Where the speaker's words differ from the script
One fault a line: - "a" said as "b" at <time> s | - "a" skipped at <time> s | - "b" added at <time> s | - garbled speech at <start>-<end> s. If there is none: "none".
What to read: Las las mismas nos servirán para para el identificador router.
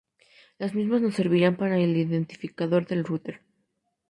- "las" skipped at 0.7 s
- "para" skipped at 1.8 s
- "del" added at 2.9 s